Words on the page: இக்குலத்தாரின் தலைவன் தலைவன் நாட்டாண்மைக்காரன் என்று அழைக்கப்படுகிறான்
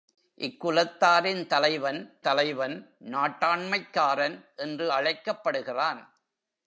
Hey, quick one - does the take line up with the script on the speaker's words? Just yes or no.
yes